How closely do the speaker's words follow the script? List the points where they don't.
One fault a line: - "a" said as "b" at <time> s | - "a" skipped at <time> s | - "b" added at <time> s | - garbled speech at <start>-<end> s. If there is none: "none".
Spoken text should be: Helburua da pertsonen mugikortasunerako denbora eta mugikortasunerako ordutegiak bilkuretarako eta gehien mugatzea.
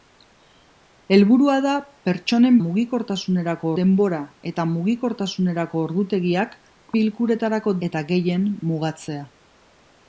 none